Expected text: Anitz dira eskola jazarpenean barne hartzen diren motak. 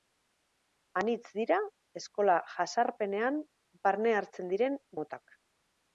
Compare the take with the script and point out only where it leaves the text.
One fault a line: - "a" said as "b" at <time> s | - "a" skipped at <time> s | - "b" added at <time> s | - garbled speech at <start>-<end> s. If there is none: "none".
none